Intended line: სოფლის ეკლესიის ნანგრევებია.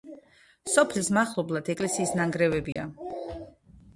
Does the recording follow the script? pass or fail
fail